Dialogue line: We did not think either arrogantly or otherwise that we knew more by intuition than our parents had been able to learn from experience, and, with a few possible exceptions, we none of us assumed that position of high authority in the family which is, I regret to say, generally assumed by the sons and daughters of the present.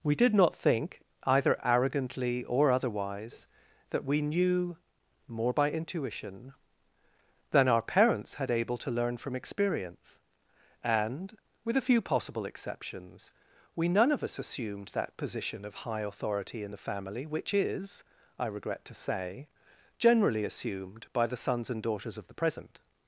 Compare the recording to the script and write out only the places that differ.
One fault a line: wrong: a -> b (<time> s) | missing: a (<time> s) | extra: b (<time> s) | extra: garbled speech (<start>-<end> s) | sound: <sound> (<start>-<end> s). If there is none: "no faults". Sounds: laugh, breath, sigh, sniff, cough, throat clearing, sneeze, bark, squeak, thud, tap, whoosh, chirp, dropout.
missing: been (8.5 s)